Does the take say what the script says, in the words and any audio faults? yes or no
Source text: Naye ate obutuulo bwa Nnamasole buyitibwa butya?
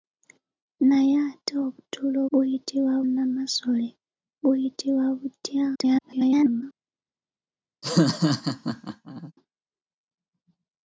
no